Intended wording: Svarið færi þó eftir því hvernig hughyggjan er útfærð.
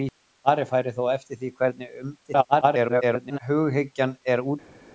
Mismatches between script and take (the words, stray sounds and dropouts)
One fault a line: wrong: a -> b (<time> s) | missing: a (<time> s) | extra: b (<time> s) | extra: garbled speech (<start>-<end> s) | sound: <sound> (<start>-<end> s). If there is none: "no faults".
extra: garbled speech (2.2-3.4 s)